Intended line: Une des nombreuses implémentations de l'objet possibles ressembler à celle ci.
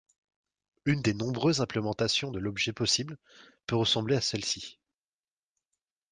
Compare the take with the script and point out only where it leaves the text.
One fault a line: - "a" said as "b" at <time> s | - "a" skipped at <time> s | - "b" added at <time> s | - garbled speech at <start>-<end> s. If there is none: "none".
- "peut" added at 3.7 s